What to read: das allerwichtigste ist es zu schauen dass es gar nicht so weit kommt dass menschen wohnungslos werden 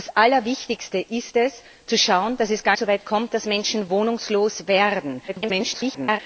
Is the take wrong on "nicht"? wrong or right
wrong